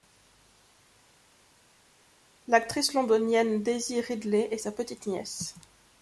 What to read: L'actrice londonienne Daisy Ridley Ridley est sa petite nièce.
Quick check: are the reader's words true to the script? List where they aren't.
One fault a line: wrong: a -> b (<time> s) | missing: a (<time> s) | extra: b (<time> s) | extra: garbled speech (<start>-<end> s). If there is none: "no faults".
missing: Ridley (4.5 s)